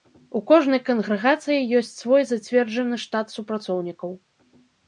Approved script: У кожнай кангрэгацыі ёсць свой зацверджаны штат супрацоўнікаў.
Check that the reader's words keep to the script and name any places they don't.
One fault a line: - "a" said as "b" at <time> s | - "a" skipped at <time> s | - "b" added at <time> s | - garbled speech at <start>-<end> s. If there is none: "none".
none